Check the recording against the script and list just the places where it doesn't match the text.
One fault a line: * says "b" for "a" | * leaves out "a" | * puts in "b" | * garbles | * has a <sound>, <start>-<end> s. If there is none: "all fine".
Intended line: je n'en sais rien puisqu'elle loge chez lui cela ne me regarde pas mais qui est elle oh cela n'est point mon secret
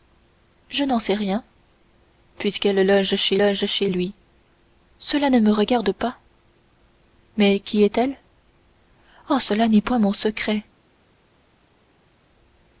* puts in "loge chez"